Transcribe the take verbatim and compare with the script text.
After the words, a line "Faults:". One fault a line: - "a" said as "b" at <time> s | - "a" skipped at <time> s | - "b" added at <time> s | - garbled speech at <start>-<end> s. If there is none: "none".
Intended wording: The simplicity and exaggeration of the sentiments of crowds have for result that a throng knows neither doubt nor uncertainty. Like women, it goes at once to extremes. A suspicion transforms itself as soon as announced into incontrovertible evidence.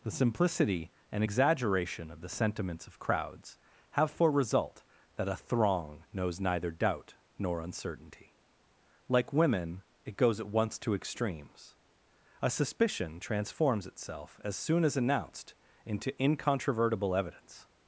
The simplicity and exaggeration of the sentiments of crowds have for result that a throng knows neither doubt nor uncertainty. Like women, it goes at once to extremes. A suspicion transforms itself as soon as announced into incontrovertible evidence.
Faults:
none